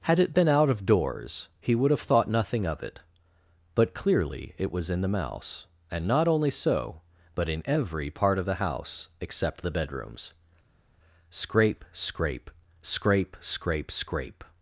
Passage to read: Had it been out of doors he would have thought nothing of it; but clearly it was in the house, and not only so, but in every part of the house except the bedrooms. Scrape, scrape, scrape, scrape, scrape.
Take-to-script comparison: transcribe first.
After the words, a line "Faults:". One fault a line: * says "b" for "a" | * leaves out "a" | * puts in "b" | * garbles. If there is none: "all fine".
Had it been out of doors he would have thought nothing of it; but clearly it was in the mouse, and not only so, but in every part of the house except the bedrooms. Scrape, scrape, scrape, scrape, scrape.
Faults:
* says "mouse" for "house"